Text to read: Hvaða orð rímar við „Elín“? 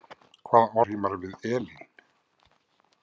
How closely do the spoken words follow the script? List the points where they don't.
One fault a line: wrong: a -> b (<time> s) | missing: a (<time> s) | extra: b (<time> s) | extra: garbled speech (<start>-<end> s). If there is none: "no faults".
missing: orð (0.8 s)